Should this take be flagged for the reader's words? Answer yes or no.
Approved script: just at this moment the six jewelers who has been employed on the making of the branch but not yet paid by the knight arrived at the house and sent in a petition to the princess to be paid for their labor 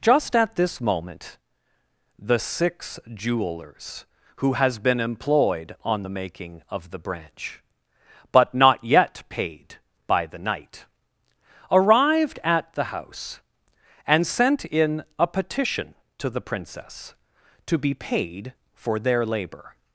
no